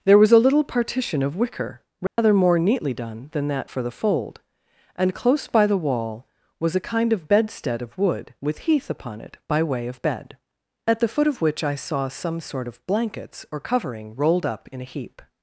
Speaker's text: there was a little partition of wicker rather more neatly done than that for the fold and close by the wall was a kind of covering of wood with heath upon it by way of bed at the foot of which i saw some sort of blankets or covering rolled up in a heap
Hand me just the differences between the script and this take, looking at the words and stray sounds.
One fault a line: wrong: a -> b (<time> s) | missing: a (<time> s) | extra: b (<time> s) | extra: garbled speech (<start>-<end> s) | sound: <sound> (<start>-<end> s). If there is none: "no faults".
sound: dropout (2.1-2.2 s)
wrong: covering -> bedstead (7.3 s)